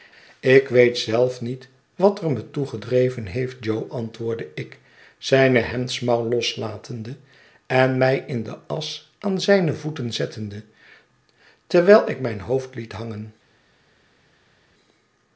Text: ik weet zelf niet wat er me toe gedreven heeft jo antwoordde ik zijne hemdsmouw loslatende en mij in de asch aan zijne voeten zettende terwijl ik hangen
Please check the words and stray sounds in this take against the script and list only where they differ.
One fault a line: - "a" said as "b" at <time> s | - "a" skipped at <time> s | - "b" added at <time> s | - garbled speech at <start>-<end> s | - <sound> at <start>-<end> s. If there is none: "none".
- "mijn hoofd liet" added at 12.2 s